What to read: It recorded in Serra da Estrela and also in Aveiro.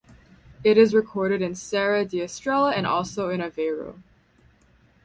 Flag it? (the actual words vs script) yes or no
yes